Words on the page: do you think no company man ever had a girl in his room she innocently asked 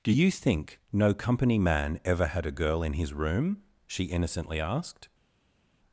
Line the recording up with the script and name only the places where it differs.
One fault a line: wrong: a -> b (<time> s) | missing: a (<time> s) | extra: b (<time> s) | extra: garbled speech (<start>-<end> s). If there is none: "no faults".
no faults